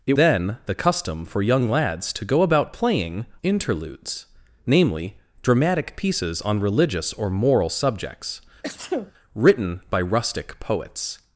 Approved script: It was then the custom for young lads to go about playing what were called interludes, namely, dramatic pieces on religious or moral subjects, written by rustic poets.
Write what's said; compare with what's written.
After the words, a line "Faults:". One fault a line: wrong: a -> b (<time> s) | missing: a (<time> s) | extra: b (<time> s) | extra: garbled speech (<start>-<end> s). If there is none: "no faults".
It then the custom for young lads to go about playing interludes, namely, dramatic pieces on religious or moral subjects, written by rustic poets.
Faults:
missing: was (0.1 s)
missing: what were called (3.3 s)